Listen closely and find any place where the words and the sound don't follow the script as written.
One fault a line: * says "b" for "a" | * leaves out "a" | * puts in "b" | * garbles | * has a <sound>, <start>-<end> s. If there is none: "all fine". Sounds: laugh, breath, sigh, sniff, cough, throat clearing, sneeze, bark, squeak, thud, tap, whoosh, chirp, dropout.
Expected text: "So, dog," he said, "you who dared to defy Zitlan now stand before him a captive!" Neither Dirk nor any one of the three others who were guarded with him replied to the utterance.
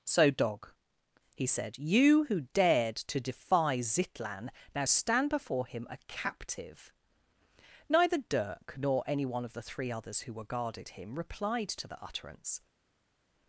* leaves out "with"